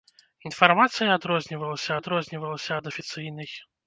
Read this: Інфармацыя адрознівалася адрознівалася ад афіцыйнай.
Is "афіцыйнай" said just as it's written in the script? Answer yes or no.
yes